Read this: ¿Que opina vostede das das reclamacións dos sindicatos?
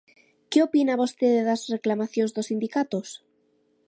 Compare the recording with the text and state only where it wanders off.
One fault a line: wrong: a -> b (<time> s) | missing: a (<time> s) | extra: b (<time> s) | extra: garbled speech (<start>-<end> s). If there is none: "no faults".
missing: das (1.6 s)